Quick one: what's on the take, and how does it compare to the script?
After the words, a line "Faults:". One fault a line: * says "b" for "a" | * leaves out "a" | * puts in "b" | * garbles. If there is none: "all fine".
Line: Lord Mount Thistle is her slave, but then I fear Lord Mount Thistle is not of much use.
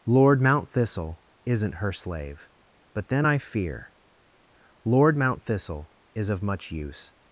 Lord Mount Thistle isn't her slave, but then I fear Lord Mount Thistle is of much use.
Faults:
* says "isn't" for "is"
* leaves out "not"